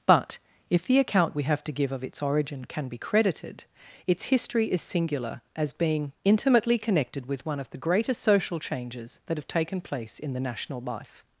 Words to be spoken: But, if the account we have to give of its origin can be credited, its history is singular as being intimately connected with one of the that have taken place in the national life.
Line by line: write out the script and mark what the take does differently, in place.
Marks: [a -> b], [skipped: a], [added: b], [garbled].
But, if the account we have to give of its origin can be credited, its history is singular as being intimately connected with one of the [added: greatest social changes] that have taken place in the national life.